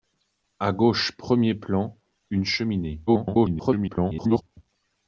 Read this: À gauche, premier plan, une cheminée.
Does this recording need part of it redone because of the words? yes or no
yes